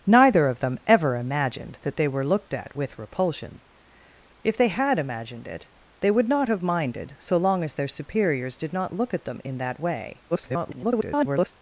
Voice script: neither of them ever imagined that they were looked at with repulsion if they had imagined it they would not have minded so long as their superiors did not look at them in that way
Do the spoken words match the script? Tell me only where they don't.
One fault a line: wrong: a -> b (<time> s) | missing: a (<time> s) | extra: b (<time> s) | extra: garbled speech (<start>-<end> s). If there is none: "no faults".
extra: garbled speech (10.3-11.5 s)